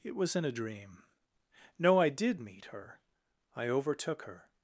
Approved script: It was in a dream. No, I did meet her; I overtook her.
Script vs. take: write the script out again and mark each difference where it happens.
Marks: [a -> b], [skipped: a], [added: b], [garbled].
It was in a dream. No, I did meet her; I overtook her.